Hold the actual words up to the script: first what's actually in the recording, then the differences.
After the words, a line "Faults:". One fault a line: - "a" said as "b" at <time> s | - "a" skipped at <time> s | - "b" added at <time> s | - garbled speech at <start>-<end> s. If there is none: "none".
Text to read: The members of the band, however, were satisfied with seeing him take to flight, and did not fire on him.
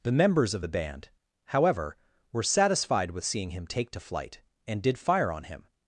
The members of the band, however, were satisfied with seeing him take to flight, and did fire on him.
Faults:
- "not" skipped at 5.0 s